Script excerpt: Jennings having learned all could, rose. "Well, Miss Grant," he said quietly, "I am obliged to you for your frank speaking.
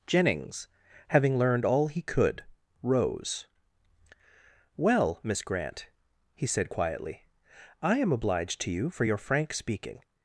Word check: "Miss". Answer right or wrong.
right